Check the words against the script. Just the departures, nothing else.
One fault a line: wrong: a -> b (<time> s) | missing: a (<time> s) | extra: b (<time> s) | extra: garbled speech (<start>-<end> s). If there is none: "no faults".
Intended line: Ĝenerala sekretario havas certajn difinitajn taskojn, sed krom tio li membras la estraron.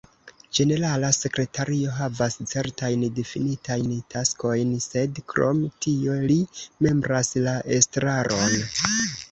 no faults